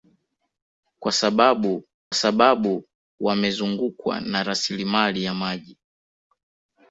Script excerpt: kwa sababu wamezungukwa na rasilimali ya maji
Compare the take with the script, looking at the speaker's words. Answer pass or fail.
fail